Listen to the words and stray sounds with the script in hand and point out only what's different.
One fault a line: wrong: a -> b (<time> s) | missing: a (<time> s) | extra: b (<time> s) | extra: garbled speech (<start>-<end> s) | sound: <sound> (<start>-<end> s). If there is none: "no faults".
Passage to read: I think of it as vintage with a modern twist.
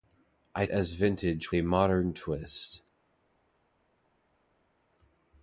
missing: think of it (0.7 s)
missing: with (1.5 s)